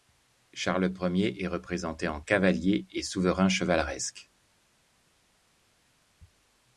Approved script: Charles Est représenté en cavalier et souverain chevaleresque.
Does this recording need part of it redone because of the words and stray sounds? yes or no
yes